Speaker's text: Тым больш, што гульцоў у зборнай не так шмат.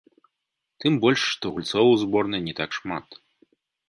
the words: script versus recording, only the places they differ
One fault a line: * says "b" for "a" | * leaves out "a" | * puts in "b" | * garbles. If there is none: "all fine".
all fine